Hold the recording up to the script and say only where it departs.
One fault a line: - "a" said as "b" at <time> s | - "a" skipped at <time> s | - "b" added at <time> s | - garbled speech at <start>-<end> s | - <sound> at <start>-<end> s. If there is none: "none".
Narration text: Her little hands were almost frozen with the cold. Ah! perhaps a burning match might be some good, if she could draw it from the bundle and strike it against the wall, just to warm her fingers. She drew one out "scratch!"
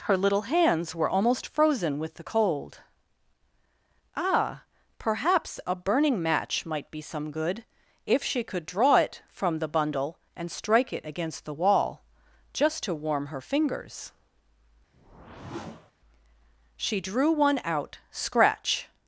- whoosh at 14.9-15.9 s